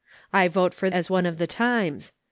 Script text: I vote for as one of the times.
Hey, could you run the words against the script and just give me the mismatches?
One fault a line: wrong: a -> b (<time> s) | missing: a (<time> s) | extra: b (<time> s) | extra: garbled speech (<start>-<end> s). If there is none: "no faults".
no faults